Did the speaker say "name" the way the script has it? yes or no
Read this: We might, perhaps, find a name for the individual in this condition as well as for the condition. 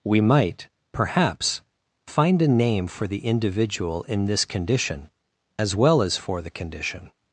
yes